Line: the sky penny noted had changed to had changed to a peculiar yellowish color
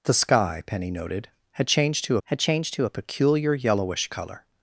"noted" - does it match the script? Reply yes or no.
yes